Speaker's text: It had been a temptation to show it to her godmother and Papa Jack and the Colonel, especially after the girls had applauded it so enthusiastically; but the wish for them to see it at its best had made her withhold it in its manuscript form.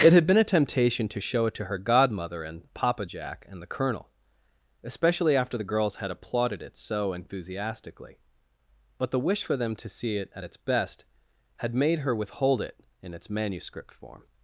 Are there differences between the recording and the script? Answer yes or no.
no